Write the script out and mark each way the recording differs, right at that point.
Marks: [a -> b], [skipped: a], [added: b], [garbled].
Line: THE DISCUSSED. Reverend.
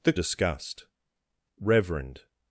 THE DISCUSSED. Reverend.